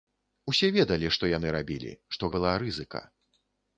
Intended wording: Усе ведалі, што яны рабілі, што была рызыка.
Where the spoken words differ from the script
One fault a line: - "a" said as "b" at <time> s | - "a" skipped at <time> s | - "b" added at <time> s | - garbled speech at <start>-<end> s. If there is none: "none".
none